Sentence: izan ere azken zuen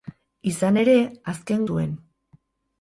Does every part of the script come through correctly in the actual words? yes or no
yes